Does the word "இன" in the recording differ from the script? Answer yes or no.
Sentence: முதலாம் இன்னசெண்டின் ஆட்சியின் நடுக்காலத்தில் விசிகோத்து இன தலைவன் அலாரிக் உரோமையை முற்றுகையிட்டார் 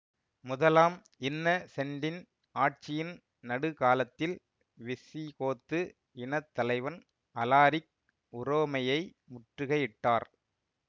no